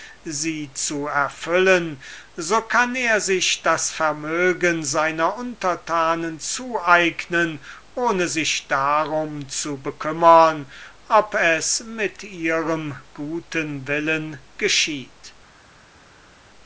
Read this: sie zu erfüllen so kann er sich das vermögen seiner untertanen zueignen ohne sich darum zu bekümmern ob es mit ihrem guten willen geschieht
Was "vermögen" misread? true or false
false